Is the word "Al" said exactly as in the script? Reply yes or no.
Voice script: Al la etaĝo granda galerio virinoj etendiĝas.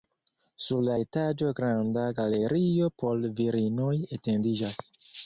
no